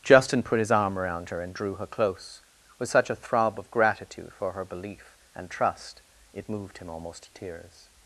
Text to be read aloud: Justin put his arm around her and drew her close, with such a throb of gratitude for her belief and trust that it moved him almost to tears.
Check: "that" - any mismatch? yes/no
yes